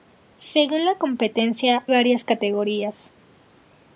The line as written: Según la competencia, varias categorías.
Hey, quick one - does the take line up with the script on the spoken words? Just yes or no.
yes